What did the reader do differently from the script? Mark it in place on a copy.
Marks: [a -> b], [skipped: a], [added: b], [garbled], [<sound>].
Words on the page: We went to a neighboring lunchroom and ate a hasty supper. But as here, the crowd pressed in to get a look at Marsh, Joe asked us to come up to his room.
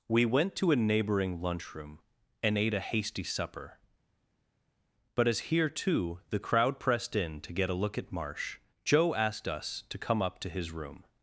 We went to a neighboring lunchroom and ate a hasty supper. But as here, [added: too] the crowd pressed in to get a look at Marsh, Joe asked us to come up to his room.